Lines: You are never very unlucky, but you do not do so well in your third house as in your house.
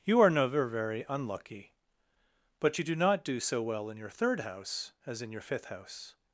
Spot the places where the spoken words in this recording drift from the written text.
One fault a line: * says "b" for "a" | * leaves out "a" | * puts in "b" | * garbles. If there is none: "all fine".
* puts in "fifth"